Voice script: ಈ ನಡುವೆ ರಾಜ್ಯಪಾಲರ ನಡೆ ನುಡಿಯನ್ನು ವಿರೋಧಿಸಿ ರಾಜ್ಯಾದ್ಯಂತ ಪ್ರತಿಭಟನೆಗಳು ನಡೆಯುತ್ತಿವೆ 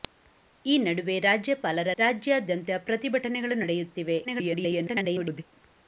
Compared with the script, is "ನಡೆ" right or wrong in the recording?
wrong